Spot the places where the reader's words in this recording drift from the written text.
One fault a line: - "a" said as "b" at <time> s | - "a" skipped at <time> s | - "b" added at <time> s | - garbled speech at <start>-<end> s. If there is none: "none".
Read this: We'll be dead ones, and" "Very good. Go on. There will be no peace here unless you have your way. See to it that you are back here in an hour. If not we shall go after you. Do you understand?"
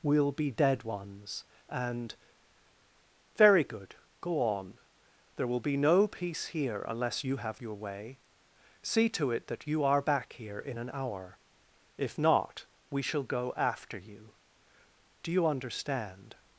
none